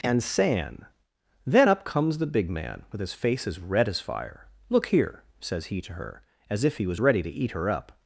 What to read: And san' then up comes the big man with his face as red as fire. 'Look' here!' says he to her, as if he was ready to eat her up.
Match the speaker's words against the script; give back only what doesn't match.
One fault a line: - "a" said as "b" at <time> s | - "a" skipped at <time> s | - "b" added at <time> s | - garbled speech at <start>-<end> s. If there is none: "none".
none